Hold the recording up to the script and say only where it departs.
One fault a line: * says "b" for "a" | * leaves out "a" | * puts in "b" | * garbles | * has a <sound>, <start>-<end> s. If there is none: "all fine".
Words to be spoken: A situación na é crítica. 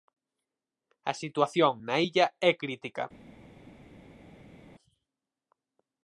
* puts in "illa"